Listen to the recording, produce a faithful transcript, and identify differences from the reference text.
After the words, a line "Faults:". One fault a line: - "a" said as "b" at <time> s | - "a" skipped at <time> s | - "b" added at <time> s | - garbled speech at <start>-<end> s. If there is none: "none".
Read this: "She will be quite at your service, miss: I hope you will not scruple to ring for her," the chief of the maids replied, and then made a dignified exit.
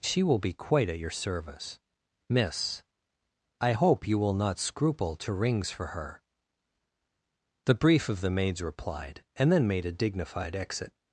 "She will be quite at your service, miss: I hope you will not scruple to rings for her," the brief of the maids replied, and then made a dignified exit.
Faults:
- "ring" said as "rings" at 5.3 s
- "chief" said as "brief" at 7.7 s